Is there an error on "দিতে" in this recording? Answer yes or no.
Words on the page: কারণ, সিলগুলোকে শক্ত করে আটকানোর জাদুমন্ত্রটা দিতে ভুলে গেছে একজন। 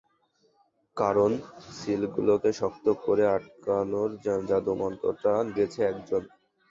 yes